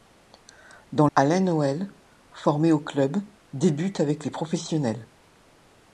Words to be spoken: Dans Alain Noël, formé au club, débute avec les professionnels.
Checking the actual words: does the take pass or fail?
pass